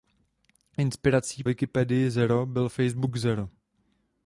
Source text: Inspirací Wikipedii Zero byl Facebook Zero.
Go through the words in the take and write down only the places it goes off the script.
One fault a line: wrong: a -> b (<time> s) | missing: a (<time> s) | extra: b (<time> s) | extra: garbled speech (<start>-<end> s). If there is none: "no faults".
no faults